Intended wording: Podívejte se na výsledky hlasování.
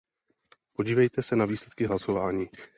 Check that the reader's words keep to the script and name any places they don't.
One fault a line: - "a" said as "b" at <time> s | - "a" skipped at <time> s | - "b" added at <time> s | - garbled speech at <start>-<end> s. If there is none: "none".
none